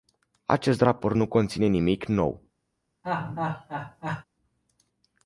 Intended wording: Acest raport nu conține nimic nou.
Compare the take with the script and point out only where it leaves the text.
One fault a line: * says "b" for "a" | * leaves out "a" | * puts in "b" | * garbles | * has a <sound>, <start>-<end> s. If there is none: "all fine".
* has a laugh, 3.0-4.2 s